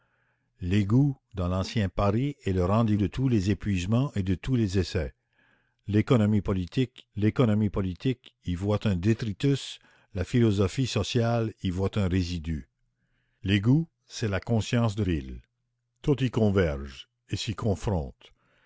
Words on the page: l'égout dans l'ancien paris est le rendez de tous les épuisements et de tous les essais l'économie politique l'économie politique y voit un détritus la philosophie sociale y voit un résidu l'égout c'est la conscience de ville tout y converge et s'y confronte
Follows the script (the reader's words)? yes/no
yes